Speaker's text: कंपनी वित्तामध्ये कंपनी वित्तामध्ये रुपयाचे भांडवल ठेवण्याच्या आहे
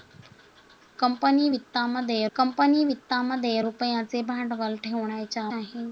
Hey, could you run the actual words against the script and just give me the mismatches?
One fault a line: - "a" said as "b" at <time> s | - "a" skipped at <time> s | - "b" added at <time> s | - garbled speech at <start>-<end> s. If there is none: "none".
none